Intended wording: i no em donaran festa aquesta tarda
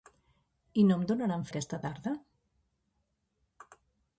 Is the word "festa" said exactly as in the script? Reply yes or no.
no